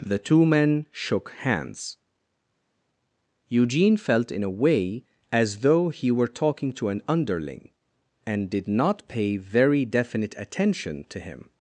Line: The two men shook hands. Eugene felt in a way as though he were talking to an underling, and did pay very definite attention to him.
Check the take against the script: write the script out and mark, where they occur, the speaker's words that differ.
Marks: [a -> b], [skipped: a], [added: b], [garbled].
The two men shook hands. Eugene felt in a way as though he were talking to an underling, and did [added: not] pay very definite attention to him.